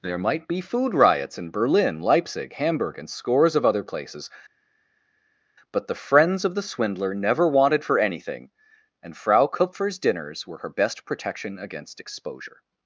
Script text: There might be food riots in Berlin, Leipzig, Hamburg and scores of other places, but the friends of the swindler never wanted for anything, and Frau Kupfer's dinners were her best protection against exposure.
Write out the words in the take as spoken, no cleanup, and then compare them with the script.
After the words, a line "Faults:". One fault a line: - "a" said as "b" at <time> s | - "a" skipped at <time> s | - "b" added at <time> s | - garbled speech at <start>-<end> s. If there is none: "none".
There might be food riots in Berlin, Leipzig, Hamburg and scores of other places, but the friends of the swindler never wanted for anything, and Frau Kupfer's dinners were her best protection against exposure.
Faults:
none